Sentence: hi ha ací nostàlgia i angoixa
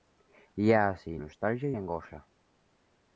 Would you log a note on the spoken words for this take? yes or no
no